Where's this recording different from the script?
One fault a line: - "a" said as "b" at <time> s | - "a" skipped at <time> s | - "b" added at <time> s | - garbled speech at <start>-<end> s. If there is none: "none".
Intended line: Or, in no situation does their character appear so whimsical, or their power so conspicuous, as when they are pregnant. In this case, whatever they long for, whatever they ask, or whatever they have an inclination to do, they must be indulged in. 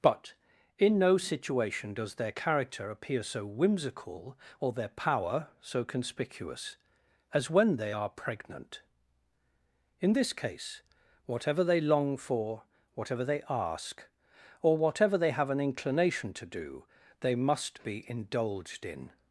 - "Or" said as "But" at 0.0 s